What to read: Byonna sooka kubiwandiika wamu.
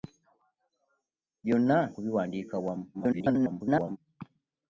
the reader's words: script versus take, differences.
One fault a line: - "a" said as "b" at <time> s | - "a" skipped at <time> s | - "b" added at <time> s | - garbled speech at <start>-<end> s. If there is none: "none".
- "sooka" skipped at 1.8 s
- garbled speech at 2.9-4.0 s